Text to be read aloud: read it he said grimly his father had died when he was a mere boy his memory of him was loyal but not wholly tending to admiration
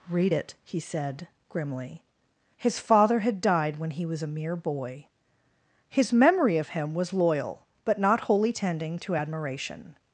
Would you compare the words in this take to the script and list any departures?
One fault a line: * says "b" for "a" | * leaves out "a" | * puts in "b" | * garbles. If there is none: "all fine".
all fine